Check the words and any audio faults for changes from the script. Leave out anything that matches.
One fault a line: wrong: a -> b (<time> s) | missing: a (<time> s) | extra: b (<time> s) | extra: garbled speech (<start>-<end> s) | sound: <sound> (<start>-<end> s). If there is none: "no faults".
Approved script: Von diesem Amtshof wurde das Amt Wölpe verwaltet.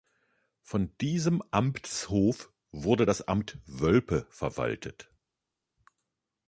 no faults